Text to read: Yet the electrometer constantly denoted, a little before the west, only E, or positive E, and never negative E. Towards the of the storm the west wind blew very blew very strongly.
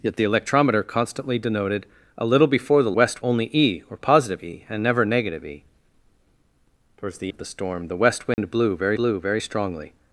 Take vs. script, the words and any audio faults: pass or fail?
fail